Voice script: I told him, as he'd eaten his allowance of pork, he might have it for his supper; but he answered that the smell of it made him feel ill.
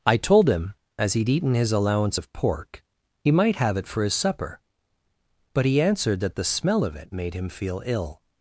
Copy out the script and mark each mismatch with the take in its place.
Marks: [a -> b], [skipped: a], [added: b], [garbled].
I told him, as he'd eaten his allowance of pork, he might have it for his supper; but he answered that the smell of it made him feel ill.